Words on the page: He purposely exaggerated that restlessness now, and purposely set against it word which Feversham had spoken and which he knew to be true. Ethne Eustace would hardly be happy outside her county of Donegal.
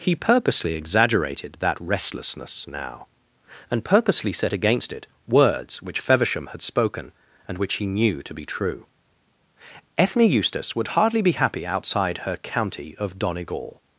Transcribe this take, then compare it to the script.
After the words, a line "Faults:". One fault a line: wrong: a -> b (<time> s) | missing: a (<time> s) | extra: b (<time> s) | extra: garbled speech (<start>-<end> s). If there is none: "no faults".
He purposely exaggerated that restlessness now, and purposely set against it words which Feversham had spoken and which he knew to be true. Ethne Eustace would hardly be happy outside her county of Donegal.
Faults:
wrong: word -> words (5.3 s)